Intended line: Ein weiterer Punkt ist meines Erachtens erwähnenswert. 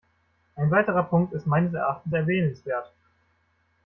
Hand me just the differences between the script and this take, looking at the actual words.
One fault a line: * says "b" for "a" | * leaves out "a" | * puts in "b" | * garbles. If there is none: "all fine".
all fine